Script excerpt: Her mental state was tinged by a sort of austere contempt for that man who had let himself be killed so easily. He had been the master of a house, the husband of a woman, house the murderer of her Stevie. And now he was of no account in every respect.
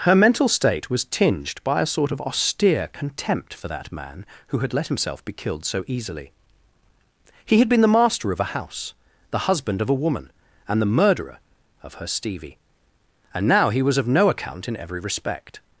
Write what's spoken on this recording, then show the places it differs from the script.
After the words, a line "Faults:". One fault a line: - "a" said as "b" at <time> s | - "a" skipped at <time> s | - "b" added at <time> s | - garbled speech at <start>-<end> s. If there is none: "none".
Her mental state was tinged by a sort of austere contempt for that man who had let himself be killed so easily. He had been the master of a house, the husband of a woman, and the murderer of her Stevie. And now he was of no account in every respect.
Faults:
- "house" said as "and" at 10.7 s